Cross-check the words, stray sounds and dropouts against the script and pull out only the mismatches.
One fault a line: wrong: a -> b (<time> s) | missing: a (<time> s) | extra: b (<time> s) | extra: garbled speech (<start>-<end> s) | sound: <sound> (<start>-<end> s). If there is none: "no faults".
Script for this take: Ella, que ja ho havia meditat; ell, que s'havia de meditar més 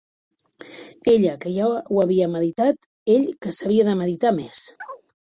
sound: chirp (4.8-5.0 s)